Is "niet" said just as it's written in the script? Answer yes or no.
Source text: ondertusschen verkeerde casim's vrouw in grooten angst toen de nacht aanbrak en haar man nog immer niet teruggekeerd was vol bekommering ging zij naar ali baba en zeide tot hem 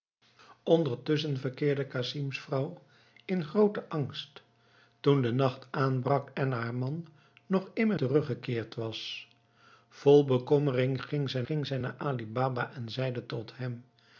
no